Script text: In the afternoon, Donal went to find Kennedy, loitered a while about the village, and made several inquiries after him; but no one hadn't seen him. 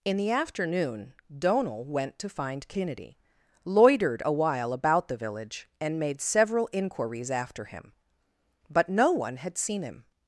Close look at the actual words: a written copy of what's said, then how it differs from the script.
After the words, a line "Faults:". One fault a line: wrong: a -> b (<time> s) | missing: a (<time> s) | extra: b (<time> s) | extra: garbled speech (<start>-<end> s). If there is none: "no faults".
In the afternoon, Donal went to find Kennedy, loitered a while about the village, and made several inquiries after him; but no one had seen him.
Faults:
wrong: hadn't -> had (9.4 s)